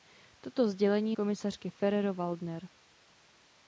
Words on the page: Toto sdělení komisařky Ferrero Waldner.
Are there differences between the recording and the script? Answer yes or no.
no